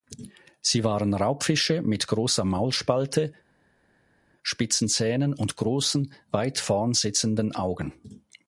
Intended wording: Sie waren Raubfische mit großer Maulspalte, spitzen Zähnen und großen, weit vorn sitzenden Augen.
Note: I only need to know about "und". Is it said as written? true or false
true